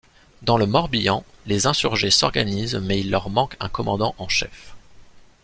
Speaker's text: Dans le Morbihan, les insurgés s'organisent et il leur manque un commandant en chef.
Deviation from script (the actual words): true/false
true